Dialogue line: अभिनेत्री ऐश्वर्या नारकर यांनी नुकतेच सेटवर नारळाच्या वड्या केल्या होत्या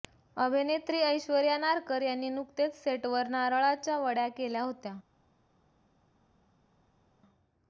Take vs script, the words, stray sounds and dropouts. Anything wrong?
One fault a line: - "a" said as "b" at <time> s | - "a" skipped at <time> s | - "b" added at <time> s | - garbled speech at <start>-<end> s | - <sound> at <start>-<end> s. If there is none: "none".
none